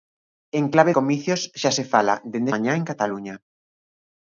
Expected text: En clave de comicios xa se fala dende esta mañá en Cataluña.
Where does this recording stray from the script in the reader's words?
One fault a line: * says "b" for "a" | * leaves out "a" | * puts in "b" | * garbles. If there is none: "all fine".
* leaves out "de"
* leaves out "esta"